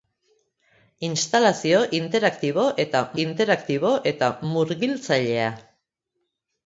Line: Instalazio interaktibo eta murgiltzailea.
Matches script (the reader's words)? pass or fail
fail